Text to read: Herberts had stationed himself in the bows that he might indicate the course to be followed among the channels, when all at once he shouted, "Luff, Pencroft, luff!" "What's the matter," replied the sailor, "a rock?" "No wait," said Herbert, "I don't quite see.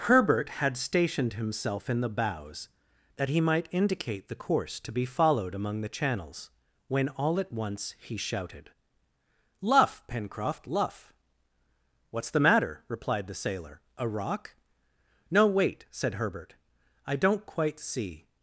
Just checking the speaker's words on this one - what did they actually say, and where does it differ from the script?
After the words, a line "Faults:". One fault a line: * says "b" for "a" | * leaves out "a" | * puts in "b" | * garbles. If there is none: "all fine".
Herbert had stationed himself in the bows that he might indicate the course to be followed among the channels, when all at once he shouted, "Luff, Pencroft, luff!" "What's the matter," replied the sailor, "a rock?" "No wait," said Herbert, "I don't quite see.
Faults:
* says "Herbert" for "Herberts"